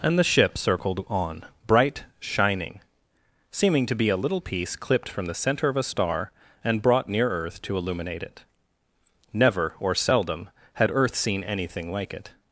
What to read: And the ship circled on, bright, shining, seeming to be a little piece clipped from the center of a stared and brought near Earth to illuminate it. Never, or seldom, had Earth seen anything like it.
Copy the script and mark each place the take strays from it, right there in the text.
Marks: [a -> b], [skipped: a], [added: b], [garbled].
And the ship circled on, bright, shining, seeming to be a little piece clipped from the center of a [stared -> star] and brought near Earth to illuminate it. Never, or seldom, had Earth seen anything like it.